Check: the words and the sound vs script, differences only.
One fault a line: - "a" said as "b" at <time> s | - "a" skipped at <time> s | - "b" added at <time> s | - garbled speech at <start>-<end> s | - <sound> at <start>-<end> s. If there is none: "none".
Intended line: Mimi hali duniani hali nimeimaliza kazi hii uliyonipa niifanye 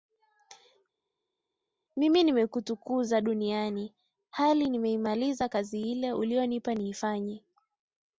- "hali" said as "nimekutukuza" at 2.2 s
- "hii" said as "ile" at 5.8 s